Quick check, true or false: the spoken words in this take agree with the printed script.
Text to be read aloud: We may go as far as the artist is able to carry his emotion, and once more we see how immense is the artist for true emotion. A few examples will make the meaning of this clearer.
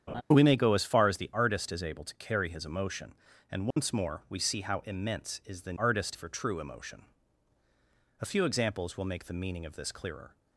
true